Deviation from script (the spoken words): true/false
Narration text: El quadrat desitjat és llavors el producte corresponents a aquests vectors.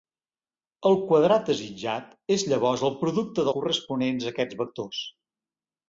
false